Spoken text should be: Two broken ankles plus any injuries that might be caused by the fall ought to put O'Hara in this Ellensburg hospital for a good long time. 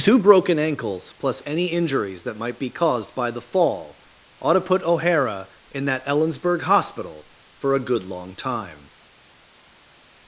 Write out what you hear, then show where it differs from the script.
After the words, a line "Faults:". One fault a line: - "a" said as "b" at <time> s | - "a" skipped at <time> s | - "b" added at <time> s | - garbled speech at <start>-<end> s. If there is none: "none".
Two broken ankles plus any injuries that might be caused by the fall ought to put O'Hara in that Ellensburg hospital for a good long time.
Faults:
- "this" said as "that" at 5.8 s